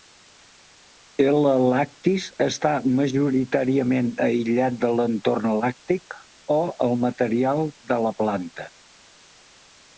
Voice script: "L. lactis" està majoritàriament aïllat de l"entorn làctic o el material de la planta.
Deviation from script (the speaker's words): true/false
false